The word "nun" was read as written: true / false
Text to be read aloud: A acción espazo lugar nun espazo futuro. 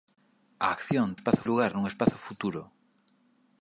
true